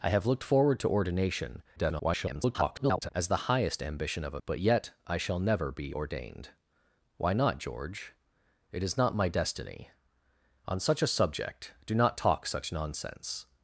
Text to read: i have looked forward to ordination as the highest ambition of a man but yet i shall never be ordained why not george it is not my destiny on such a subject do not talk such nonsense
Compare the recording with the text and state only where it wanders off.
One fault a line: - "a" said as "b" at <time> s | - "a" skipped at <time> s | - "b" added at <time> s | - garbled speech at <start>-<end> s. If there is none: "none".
- garbled speech at 1.8-3.1 s
- "man" skipped at 4.4 s